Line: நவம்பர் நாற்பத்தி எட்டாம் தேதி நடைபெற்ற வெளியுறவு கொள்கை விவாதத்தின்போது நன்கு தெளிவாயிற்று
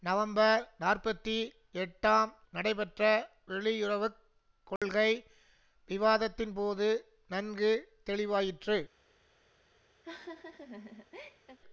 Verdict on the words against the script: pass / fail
fail